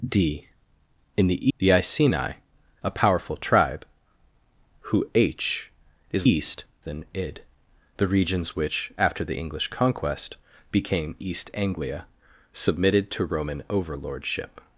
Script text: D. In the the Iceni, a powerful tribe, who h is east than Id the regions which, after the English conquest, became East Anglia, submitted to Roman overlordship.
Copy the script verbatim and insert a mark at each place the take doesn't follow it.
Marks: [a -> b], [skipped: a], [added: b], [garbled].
D. In the the Iceni, a powerful tribe, who h is east than Id the regions which, after the English conquest, became East Anglia, submitted to Roman overlordship.